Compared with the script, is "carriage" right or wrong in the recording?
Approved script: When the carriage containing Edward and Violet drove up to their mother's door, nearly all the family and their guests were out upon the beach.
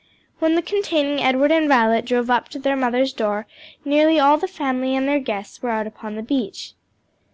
wrong